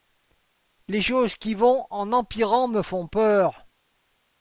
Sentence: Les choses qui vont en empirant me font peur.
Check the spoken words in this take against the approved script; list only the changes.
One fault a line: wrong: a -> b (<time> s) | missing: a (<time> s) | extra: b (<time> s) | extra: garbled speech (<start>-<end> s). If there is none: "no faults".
no faults